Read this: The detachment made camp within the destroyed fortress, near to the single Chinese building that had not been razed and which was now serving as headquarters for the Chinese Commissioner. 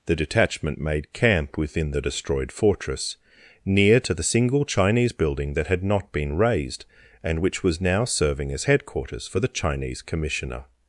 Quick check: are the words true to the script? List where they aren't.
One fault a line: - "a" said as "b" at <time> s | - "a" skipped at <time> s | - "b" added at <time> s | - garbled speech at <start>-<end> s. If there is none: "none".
none